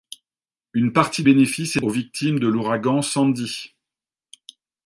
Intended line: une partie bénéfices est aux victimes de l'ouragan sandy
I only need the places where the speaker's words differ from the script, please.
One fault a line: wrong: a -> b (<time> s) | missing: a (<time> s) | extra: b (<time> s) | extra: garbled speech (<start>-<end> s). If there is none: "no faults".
no faults